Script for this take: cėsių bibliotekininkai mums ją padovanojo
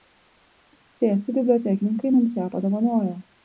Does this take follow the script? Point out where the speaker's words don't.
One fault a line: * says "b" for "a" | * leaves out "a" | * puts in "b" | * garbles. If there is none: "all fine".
all fine